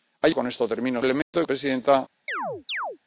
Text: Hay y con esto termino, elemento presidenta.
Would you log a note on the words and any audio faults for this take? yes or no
yes